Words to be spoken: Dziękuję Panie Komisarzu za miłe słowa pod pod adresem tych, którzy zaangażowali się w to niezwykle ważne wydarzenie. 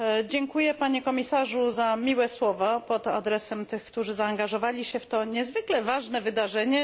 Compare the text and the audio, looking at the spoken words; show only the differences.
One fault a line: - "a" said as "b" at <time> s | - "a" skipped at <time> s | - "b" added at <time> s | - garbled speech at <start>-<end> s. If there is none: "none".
- "pod" skipped at 3.1 s